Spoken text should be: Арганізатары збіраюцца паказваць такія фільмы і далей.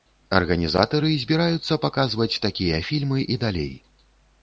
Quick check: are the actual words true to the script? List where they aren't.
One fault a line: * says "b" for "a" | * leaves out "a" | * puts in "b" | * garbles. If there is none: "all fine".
all fine